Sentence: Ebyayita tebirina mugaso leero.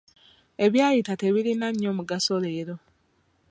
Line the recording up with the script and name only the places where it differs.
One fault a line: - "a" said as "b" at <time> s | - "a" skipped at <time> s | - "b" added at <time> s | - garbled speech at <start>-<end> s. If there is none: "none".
- "nnyo" added at 1.7 s